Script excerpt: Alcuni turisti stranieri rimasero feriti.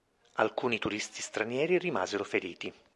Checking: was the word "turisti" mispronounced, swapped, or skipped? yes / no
no